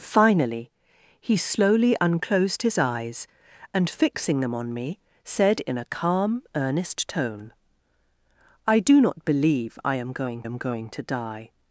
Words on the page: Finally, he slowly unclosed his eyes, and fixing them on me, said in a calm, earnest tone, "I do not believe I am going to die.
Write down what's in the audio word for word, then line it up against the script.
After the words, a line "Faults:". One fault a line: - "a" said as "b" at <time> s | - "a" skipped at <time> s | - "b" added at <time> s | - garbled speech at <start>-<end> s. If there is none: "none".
Finally, he slowly unclosed his eyes, and fixing them on me, said in a calm, earnest tone, "I do not believe I am going am going to die.
Faults:
- "am going" added at 10.4 s